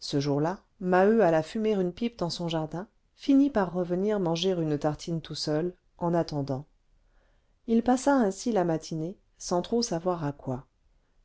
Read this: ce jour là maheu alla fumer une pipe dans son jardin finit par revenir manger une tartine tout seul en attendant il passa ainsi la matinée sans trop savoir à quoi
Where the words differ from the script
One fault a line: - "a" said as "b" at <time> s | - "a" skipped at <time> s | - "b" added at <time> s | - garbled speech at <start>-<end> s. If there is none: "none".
none